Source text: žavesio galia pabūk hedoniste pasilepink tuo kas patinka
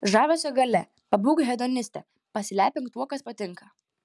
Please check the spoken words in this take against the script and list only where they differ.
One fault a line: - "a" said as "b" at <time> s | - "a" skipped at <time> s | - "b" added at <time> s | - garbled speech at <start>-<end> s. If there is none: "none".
none